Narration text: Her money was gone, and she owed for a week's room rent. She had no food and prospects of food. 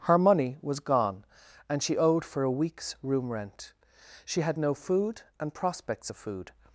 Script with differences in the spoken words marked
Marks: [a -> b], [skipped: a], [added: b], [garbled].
Her money was gone, and she owed for a week's room rent. She had no food and prospects of food.